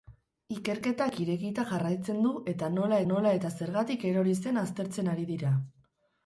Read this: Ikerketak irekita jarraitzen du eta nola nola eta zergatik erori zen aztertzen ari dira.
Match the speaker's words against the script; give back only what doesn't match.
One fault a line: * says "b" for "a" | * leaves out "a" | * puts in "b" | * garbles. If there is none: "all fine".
all fine